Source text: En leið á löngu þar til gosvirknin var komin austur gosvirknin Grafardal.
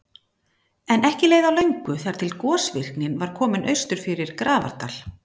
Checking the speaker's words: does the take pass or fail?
fail